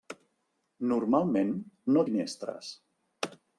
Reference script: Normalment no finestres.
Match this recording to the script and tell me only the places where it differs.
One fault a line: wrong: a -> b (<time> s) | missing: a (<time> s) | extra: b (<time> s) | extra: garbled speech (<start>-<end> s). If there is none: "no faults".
no faults